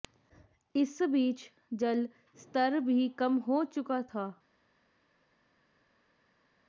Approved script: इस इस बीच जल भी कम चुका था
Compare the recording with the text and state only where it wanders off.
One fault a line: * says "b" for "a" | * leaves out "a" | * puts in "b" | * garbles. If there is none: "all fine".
* leaves out "इस"
* puts in "स्तर"
* puts in "हो"